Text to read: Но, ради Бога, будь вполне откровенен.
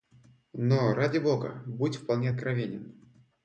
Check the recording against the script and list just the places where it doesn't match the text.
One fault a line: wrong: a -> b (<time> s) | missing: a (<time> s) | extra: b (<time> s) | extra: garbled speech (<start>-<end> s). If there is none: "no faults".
no faults